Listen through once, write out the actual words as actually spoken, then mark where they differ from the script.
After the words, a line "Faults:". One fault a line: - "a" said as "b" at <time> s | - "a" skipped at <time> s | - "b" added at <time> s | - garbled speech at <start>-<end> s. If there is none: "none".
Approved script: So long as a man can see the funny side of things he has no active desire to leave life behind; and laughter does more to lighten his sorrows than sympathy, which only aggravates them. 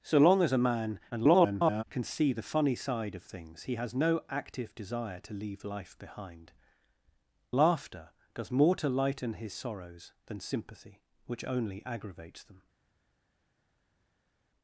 So long as a man [garbled] can see the funny side of things he has no active desire to leave life behind; laughter does more to lighten his sorrows than sympathy, which only aggravates them.
Faults:
- garbled speech at 1.1-1.8 s
- "and" skipped at 6.5 s